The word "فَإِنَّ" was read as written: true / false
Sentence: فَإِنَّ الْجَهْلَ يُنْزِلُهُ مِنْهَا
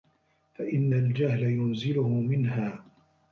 true